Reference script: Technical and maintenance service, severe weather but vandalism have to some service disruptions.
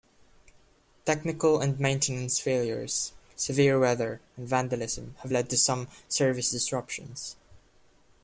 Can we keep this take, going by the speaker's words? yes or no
no